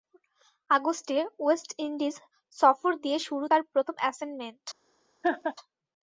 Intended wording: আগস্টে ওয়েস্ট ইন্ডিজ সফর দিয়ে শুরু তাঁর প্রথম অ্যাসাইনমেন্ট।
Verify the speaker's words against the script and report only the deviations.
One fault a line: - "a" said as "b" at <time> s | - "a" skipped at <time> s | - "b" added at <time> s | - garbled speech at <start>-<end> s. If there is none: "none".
none